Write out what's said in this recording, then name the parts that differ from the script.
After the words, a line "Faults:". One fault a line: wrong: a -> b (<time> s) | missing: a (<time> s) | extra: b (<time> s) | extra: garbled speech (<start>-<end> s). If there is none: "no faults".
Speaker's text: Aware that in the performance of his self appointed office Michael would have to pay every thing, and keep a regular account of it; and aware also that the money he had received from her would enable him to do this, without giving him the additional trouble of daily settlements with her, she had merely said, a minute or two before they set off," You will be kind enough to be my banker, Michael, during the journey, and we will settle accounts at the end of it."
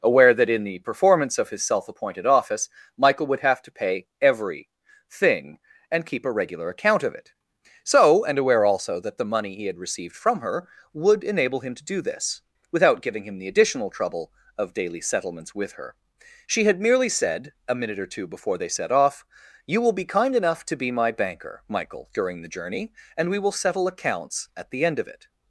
Aware that in the performance of his self appointed office Michael would have to pay every thing, and keep a regular account of it; so and aware also that the money he had received from her would enable him to do this, without giving him the additional trouble of daily settlements with her, she had merely said, a minute or two before they set off," You will be kind enough to be my banker, Michael, during the journey, and we will settle accounts at the end of it."
Faults:
extra: so (7.8 s)